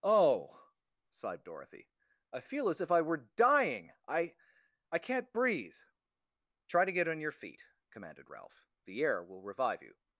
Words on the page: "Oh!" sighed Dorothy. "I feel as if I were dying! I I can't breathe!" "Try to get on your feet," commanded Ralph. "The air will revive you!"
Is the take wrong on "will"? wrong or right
right